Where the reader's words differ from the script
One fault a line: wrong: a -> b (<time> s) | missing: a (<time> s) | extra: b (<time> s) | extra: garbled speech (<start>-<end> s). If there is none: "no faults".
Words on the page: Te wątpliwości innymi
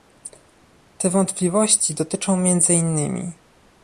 extra: dotyczą między (1.9 s)